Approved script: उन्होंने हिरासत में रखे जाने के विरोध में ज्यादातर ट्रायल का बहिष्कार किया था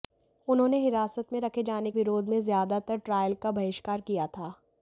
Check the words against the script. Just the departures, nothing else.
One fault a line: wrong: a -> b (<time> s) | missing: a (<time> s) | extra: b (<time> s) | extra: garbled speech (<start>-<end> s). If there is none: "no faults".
missing: के (1.9 s)